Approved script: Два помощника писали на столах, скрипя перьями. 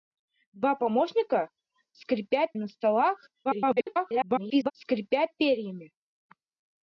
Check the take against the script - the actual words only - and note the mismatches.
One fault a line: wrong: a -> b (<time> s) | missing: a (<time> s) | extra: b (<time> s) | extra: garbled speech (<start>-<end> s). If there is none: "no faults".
wrong: писали -> скрипя (1.9 s)
extra: garbled speech (3.4-4.7 s)